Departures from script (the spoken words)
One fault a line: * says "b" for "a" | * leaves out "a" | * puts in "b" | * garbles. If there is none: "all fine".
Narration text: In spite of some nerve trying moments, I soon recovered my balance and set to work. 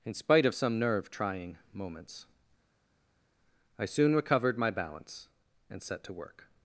all fine